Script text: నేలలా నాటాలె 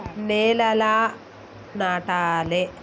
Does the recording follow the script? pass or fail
pass